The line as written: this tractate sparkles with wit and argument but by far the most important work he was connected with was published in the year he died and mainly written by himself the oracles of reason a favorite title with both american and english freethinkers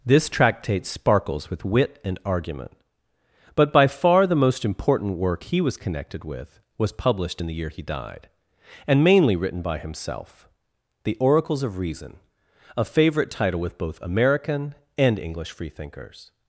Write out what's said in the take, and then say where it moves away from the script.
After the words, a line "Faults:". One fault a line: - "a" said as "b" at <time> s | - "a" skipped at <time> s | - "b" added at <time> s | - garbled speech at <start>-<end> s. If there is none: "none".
this tractate sparkles with wit and argument but by far the most important work he was connected with was published in the year he died and mainly written by himself the oracles of reason a favorite title with both american and english freethinkers
Faults:
none